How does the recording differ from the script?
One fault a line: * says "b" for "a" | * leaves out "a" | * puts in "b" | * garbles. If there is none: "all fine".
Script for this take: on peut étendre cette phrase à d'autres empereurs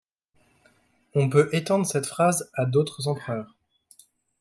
all fine